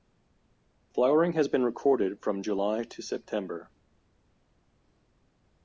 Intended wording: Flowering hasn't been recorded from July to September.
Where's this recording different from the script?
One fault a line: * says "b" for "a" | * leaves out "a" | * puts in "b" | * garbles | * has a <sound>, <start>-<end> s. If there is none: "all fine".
* says "has" for "hasn't"